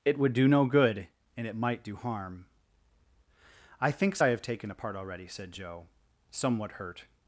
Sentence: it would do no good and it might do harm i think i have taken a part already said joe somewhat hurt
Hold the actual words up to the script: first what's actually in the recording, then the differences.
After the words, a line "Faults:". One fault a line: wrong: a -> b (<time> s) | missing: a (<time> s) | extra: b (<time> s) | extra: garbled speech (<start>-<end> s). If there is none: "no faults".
it would do no good and it might do harm i thinks i have taken a part already said joe somewhat hurt
Faults:
wrong: think -> thinks (3.9 s)